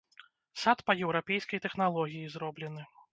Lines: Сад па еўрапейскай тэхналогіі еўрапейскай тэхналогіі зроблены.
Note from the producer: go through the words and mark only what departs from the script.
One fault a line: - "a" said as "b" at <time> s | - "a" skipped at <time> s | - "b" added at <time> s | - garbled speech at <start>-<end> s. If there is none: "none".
- "еўрапейскай тэхналогіі" skipped at 2.3 s